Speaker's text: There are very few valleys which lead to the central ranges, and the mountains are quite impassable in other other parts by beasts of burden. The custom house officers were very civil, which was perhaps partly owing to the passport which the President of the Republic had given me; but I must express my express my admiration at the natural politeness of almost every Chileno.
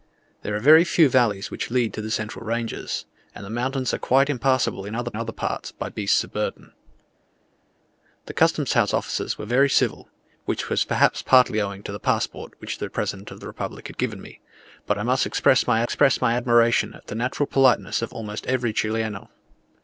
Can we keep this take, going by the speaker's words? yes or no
yes